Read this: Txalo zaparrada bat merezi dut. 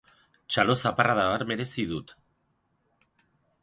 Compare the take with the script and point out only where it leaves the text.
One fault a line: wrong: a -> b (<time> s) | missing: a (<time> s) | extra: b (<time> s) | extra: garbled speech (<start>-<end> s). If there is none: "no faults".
no faults